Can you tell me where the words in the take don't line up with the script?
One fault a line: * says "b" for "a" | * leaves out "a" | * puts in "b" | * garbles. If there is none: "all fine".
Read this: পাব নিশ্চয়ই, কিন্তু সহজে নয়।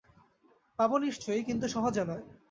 all fine